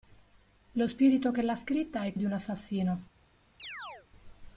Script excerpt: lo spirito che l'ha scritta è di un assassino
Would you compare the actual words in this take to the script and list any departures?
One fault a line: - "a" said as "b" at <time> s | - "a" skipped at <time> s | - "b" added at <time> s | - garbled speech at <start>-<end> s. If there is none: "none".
none